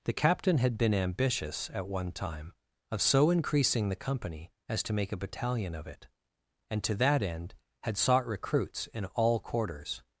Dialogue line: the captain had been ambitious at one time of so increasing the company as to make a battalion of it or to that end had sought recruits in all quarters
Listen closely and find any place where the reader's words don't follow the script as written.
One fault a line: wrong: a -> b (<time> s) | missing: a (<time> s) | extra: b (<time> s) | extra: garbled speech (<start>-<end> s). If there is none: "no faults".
wrong: or -> and (6.7 s)